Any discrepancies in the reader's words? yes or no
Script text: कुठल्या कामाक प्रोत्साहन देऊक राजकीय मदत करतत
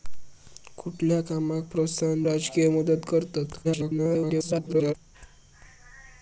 yes